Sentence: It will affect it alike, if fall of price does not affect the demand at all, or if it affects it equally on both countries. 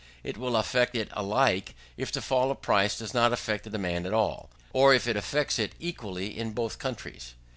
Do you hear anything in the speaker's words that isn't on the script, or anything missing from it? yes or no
yes